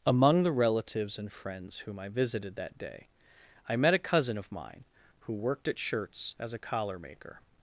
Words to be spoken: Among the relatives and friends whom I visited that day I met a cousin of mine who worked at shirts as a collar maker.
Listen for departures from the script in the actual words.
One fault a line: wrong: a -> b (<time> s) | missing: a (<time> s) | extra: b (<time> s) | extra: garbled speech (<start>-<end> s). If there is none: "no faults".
no faults